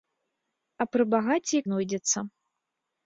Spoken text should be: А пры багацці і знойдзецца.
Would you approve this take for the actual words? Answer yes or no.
yes